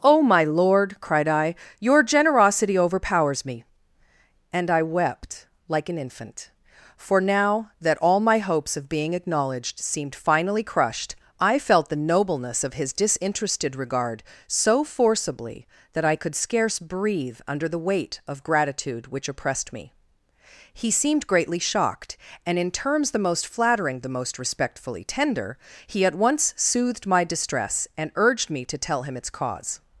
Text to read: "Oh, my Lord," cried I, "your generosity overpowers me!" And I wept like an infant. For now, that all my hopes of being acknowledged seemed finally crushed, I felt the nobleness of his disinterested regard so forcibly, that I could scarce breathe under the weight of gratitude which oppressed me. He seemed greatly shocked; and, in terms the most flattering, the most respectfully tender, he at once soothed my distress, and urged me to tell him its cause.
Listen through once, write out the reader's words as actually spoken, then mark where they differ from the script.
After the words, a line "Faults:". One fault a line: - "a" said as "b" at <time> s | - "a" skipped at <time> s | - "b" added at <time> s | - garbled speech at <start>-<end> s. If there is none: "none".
"Oh, my Lord," cried I, "your generosity overpowers me!" And I wept like an infant. For now, that all my hopes of being acknowledged seemed finally crushed, I felt the nobleness of his disinterested regard so forcibly, that I could scarce breathe under the weight of gratitude which oppressed me. He seemed greatly shocked; and, in terms the most flattering, the most respectfully tender, he at once soothed my distress, and urged me to tell him its cause.
Faults:
none